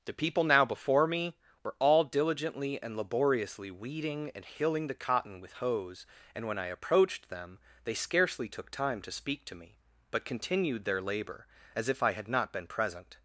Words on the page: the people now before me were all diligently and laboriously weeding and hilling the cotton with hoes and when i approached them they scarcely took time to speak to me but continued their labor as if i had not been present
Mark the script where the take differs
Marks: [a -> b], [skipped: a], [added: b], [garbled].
the people now before me were all diligently and laboriously weeding and hilling the cotton with hoes and when i approached them they scarcely took time to speak to me but continued their labor as if i had not been present